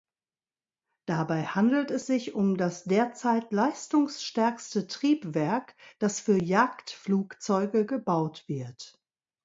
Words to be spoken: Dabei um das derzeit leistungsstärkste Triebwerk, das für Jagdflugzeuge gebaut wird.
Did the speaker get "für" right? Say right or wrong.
right